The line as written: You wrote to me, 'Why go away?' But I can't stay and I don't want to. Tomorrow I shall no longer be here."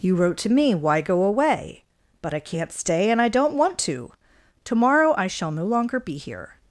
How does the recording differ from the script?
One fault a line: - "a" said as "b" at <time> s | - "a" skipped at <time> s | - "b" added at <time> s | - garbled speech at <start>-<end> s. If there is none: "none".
none